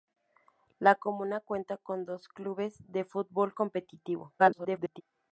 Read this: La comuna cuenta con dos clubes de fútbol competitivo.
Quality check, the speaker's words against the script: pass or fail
fail